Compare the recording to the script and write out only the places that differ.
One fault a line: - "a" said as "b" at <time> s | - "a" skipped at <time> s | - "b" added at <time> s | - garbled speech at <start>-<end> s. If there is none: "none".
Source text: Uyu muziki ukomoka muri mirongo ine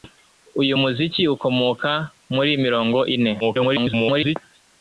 - garbled speech at 3.4-4.4 s